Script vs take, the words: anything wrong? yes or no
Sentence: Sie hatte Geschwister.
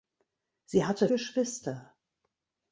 no